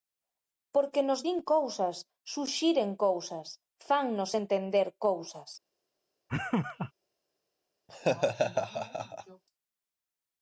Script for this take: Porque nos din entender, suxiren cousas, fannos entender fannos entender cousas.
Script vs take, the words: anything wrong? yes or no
yes